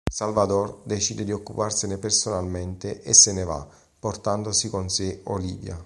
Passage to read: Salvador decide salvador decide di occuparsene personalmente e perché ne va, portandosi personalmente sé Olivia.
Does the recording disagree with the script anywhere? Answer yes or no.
yes